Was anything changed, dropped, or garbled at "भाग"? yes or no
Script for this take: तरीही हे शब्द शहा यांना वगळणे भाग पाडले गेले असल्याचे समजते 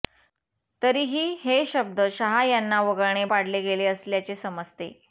yes